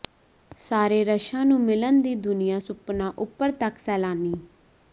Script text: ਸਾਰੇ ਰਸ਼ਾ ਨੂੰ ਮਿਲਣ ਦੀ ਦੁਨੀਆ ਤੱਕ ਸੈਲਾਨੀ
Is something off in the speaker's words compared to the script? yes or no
yes